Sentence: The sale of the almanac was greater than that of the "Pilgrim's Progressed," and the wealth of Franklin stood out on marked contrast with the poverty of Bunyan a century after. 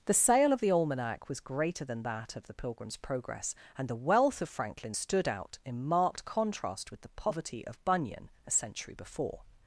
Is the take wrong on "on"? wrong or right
wrong